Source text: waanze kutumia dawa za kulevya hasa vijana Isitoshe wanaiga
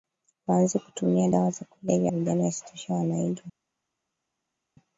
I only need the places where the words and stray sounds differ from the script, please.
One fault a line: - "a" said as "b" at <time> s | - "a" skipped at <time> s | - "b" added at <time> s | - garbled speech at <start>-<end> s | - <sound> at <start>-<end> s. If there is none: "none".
- "hasa" skipped at 2.1 s